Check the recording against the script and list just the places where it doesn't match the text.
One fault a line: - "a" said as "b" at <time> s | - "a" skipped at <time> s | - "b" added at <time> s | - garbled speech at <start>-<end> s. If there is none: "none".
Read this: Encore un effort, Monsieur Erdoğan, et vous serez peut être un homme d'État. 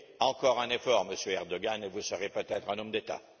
none